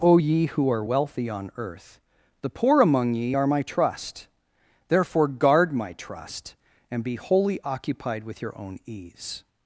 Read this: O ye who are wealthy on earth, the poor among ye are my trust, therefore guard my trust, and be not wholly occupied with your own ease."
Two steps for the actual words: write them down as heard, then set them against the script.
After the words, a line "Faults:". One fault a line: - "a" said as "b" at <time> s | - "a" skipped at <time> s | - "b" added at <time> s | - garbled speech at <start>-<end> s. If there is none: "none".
O ye who are wealthy on earth, the poor among ye are my trust, therefore guard my trust, and be wholly occupied with your own ease."
Faults:
- "not" skipped at 7.2 s